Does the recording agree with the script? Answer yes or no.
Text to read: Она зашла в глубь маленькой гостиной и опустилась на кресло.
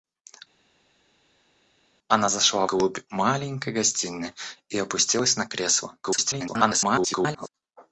no